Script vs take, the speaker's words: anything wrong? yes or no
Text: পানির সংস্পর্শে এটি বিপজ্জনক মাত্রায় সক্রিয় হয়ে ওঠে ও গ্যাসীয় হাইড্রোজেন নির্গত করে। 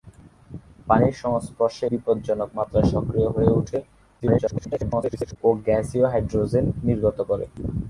yes